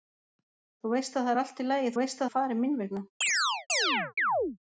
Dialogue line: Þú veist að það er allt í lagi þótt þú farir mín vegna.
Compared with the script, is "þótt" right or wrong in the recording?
wrong